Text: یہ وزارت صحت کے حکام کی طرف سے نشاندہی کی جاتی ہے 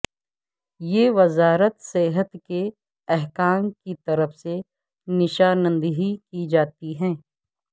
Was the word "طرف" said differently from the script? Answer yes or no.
no